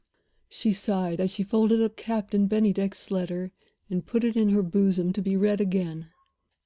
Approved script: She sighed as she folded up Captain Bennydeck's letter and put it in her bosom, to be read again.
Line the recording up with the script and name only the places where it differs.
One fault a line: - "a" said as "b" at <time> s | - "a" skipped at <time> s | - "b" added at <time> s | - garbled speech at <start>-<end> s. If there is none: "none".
none